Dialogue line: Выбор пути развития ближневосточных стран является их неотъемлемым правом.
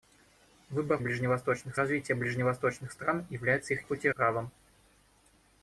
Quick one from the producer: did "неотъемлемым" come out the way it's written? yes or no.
no